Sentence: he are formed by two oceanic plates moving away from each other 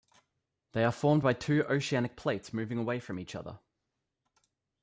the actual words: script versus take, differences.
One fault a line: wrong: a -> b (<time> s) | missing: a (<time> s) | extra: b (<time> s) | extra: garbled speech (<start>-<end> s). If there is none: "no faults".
wrong: he -> they (0.7 s)